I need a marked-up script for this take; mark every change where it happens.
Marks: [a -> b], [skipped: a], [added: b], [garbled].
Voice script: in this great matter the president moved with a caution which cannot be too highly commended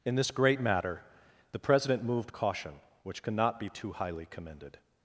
in this great matter the president moved [skipped: with] a caution which cannot be too highly commended